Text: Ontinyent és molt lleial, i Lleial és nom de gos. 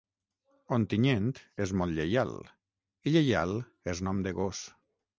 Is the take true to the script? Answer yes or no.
yes